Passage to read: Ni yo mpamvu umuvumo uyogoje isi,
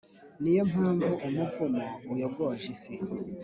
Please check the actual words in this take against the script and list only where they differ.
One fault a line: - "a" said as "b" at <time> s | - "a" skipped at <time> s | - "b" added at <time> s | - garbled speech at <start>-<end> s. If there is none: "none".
none